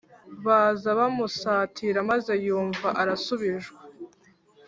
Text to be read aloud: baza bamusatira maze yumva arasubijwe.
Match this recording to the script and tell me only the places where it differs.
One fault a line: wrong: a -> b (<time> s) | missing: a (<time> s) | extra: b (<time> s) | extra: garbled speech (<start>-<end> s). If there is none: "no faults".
no faults